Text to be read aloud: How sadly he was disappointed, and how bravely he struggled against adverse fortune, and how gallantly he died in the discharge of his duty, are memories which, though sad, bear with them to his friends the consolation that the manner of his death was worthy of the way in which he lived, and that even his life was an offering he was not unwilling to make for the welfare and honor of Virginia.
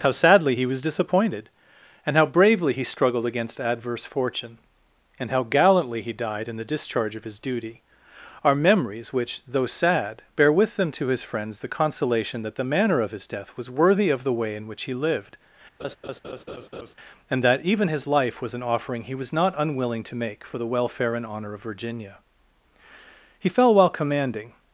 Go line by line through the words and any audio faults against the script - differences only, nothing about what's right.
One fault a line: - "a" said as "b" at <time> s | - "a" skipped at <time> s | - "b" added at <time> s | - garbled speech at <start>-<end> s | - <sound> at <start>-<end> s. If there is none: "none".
- laugh at 15.8-16.9 s
- "He fell while commanding" added at 23.4 s